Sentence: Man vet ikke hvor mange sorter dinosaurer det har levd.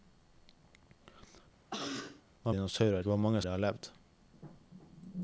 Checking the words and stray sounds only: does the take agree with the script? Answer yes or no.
no